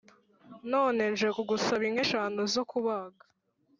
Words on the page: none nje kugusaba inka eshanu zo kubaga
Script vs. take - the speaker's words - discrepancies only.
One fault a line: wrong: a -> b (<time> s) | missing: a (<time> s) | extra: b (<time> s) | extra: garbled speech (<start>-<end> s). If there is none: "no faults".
no faults